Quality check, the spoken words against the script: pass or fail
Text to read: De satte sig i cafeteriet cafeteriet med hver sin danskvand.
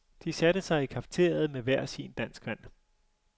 fail